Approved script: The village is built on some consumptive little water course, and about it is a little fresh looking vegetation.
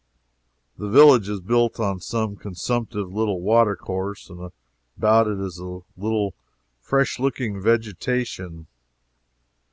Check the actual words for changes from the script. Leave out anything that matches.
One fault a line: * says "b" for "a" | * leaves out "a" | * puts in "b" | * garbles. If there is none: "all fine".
all fine